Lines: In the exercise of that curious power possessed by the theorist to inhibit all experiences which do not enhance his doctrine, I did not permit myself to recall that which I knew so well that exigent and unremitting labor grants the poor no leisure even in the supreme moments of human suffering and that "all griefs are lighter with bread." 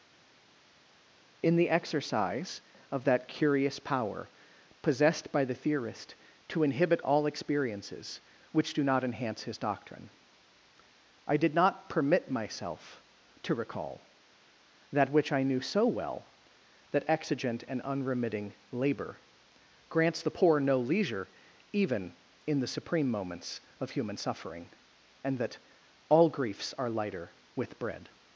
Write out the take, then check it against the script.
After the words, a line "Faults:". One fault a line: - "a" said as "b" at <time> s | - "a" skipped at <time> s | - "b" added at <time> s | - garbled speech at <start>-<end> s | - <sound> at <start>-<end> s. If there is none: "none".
In the exercise of that curious power possessed by the theorist to inhibit all experiences which do not enhance his doctrine, I did not permit myself to recall that which I knew so well that exigent and unremitting labor grants the poor no leisure even in the supreme moments of human suffering and that "all griefs are lighter with bread."
Faults:
none